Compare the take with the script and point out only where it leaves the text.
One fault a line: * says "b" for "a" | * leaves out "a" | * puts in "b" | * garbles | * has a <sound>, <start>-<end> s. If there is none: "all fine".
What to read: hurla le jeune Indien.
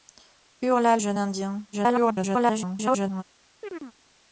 * leaves out "le"
* garbles
* has a chirp, 3.6-3.9 s